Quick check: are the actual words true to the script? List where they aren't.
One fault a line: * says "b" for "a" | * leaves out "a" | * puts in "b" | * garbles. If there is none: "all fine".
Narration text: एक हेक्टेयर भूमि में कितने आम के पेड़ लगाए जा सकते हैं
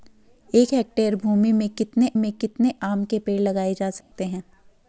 * puts in "में कितने"